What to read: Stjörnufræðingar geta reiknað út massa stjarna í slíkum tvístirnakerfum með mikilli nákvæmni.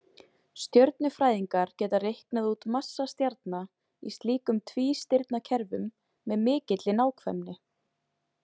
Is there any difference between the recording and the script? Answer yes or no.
no